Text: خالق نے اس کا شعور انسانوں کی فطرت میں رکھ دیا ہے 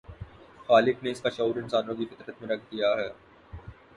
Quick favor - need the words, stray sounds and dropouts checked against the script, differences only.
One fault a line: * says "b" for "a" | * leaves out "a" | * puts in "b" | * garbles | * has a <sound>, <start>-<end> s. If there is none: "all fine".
all fine